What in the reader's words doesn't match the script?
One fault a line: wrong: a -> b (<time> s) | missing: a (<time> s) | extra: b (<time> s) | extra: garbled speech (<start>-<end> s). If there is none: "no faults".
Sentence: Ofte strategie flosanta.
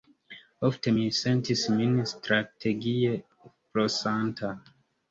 extra: mi sentis min (0.9 s)